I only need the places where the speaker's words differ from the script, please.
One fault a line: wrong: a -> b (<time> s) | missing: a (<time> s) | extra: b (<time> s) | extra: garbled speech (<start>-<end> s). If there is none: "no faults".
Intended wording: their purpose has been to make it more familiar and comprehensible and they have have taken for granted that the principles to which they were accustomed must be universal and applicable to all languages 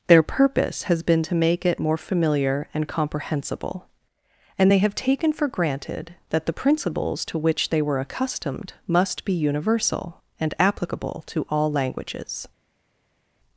missing: have (4.9 s)